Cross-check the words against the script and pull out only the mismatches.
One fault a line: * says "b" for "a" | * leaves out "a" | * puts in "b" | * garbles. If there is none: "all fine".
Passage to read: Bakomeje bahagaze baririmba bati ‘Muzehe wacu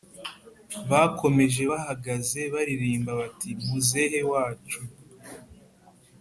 all fine